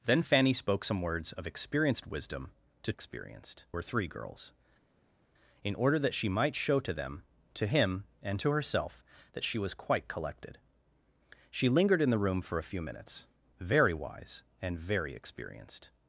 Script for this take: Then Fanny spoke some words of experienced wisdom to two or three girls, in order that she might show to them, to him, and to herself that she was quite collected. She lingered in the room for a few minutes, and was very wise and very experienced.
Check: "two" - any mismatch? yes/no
yes